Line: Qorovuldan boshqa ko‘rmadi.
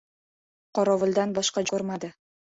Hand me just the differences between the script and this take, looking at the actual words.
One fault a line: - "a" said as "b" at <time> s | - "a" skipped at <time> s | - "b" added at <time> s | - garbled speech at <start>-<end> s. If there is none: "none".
none